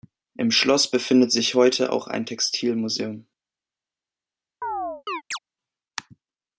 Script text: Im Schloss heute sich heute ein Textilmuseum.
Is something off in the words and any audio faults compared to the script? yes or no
yes